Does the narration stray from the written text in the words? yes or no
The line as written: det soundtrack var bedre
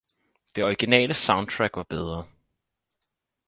yes